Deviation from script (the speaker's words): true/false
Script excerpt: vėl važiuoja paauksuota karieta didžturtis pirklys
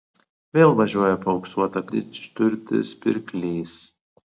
true